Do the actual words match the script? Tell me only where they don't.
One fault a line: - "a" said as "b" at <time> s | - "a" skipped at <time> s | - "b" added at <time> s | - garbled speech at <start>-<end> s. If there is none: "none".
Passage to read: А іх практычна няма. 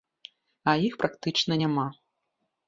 none